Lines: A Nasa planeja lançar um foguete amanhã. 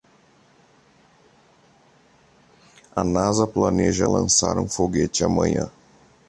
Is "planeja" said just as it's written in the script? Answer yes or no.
yes